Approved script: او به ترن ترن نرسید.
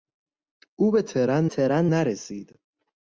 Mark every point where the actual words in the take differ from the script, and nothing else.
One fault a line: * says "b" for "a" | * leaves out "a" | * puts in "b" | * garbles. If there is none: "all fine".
all fine